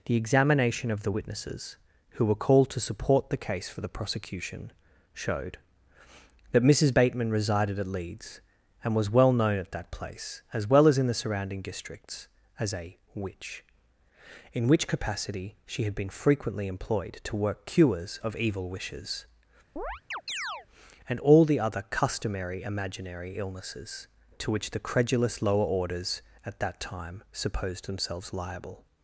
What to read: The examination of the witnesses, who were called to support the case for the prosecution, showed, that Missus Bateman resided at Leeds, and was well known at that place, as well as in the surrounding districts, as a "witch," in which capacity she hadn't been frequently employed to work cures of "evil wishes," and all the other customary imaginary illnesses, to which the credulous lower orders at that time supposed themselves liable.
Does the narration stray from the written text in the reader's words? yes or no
yes